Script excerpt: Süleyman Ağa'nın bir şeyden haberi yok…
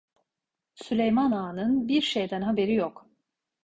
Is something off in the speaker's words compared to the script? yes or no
no